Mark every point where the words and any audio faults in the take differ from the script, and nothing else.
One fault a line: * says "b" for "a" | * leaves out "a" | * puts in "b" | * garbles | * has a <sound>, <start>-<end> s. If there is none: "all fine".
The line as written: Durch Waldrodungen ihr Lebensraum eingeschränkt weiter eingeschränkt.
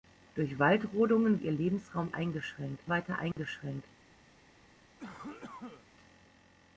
* has a dropout, 3.3-3.4 s
* has a cough, 5.0-5.9 s